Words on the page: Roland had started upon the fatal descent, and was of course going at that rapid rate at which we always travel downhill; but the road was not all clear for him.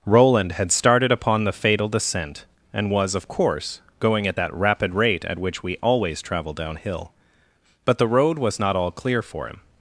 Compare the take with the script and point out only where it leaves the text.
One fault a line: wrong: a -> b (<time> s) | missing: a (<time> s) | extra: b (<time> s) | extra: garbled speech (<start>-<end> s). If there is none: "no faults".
no faults